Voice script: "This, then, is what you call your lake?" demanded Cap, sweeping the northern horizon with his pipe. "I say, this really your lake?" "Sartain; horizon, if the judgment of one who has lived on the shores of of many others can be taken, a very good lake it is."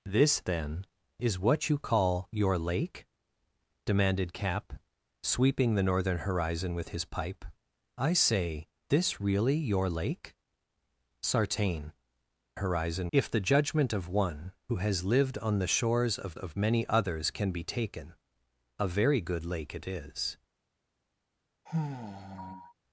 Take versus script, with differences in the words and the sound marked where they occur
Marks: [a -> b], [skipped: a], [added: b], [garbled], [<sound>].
"This, then, is what you call your lake?" demanded Cap, sweeping the northern horizon with his pipe. "I say, this really your lake?" "Sartain; horizon, if the judgment of one who has lived on the shores of of many others can be taken, a very good lake it is." [sigh]